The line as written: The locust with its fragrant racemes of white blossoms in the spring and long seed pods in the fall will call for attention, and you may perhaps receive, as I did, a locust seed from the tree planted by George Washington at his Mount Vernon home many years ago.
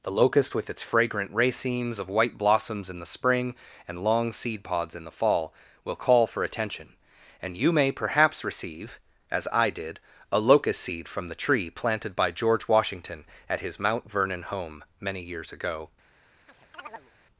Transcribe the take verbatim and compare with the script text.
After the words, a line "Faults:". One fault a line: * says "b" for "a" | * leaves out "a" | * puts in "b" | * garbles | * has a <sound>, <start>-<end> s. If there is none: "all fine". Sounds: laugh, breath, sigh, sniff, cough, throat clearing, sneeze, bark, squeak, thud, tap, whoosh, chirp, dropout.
The locust with its fragrant racemes of white blossoms in the spring and long seed pods in the fall will call for attention, and you may perhaps receive, as I did, a locust seed from the tree planted by George Washington at his Mount Vernon home many years ago.
Faults:
* has a chirp, 16.5-17.1 s